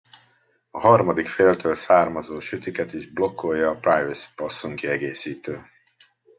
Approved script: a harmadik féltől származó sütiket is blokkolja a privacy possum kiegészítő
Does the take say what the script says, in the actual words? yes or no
yes